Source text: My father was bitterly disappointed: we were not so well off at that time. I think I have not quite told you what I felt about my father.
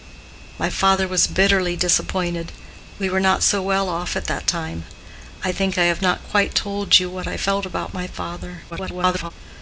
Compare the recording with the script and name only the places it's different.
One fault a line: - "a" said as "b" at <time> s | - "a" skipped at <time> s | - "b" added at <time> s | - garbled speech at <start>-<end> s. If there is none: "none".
- garbled speech at 8.7-9.3 s